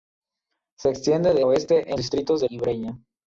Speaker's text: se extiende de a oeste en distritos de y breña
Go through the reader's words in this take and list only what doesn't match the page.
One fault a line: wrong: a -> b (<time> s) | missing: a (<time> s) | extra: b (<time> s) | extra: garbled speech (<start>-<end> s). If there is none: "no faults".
no faults